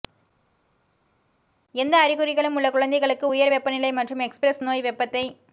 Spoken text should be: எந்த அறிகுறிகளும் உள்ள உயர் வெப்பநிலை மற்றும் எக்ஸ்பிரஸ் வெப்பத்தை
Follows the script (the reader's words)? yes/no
no